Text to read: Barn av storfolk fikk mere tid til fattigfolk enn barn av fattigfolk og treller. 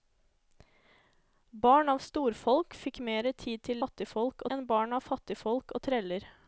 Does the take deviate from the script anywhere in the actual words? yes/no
no